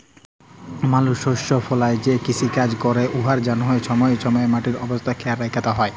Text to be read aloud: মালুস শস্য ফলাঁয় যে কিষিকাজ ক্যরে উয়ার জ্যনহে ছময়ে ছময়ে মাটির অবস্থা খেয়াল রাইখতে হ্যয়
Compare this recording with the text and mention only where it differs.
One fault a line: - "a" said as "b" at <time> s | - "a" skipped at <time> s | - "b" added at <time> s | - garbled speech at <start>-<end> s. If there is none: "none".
none